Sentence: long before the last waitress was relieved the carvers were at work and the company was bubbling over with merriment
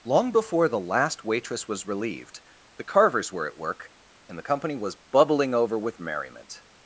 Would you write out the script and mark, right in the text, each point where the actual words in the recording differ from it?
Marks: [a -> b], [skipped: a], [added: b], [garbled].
long before the last waitress was relieved the carvers were at work and the company was bubbling over with merriment